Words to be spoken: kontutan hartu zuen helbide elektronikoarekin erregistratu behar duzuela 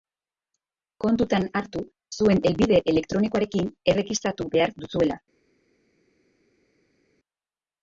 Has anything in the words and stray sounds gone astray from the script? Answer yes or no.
no